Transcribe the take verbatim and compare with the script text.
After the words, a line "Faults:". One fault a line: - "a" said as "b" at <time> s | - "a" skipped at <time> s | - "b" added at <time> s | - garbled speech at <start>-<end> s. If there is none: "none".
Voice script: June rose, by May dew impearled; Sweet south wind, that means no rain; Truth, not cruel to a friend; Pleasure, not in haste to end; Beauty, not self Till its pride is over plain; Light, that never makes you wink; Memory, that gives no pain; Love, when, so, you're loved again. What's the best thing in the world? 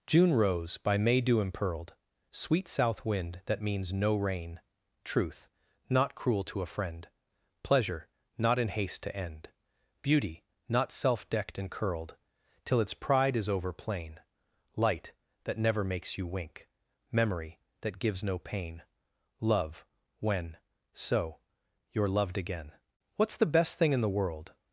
June rose, by May dew impearled; Sweet south wind, that means no rain; Truth, not cruel to a friend; Pleasure, not in haste to end; Beauty, not self decked and curled Till its pride is over plain; Light, that never makes you wink; Memory, that gives no pain; Love, when, so, you're loved again. What's the best thing in the world?
Faults:
- "decked and curled" added at 11.3 s